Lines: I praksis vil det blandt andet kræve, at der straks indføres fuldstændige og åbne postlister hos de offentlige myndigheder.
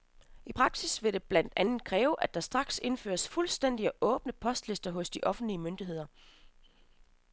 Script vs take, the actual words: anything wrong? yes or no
no